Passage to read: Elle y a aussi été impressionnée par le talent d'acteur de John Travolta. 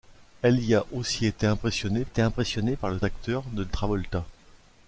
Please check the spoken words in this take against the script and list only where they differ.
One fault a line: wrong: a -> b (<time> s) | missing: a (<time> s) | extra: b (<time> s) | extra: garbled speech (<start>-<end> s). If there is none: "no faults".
extra: été impressionnée (2.0 s)
missing: talent (3.0 s)
missing: John (3.7 s)